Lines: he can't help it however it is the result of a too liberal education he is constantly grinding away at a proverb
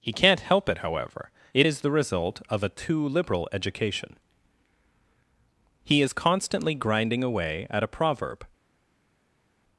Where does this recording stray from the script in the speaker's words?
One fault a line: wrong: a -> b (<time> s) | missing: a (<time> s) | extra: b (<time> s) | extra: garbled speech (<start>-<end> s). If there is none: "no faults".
no faults